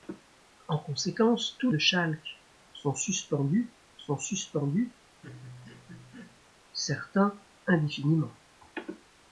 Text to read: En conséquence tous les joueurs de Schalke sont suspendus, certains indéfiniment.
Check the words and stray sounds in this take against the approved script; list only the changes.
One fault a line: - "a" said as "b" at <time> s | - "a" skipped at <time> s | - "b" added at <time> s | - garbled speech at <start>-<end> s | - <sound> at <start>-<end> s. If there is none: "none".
- "les joueurs de Schalke" said as "de Schalke sont suspendus" at 1.7 s
- laugh at 5.2-6.5 s